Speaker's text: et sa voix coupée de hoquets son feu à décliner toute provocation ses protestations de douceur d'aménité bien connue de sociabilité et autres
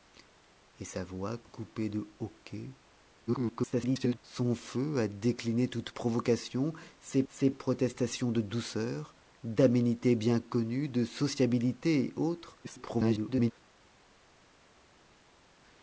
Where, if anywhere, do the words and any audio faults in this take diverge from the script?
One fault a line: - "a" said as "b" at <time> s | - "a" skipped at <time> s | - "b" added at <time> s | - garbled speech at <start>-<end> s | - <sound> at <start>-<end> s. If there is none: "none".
- garbled speech at 3.3-4.2 s
- "ses" added at 7.3 s
- garbled speech at 12.6-13.5 s